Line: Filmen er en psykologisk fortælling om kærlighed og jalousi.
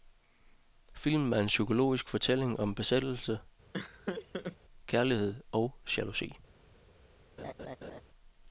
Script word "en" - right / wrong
right